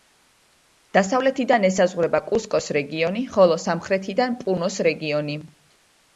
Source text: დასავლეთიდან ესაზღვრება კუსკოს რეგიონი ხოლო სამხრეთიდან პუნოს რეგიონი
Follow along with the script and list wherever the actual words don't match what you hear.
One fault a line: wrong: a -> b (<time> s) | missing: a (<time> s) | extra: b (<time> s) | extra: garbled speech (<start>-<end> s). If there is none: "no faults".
no faults